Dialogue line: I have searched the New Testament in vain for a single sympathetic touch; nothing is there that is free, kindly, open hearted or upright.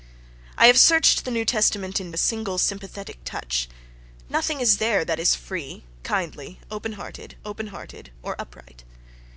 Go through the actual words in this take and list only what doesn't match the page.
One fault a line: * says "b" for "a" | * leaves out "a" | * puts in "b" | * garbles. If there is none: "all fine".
* leaves out "vain for"
* puts in "open hearted"